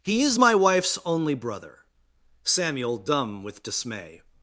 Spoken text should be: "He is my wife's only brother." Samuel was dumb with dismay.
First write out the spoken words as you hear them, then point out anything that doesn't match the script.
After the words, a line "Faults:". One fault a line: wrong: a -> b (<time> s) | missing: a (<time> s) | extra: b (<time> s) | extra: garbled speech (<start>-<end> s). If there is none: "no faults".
"He is my wife's only brother." Samuel dumb with dismay.
Faults:
missing: was (3.0 s)